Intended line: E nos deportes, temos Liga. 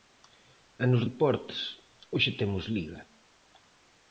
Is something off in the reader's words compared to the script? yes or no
yes